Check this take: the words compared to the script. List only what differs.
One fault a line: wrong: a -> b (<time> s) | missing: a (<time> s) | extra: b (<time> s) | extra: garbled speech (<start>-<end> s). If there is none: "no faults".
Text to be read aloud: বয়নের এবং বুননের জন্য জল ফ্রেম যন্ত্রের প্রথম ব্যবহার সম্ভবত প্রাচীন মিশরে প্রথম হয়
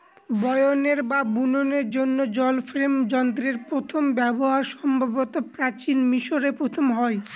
wrong: এবং -> বা (1.0 s)